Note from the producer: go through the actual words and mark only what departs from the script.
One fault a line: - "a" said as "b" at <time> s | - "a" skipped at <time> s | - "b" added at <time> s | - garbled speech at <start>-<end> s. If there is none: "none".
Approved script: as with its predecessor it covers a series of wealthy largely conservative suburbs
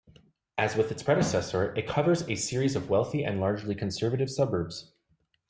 - "and" added at 3.2 s